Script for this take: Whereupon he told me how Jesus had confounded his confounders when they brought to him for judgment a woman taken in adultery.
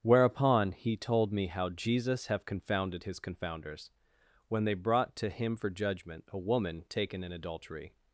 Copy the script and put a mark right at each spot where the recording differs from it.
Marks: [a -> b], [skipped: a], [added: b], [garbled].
Whereupon he told me how Jesus [had -> have] confounded his confounders when they brought to him for judgment a woman taken in adultery.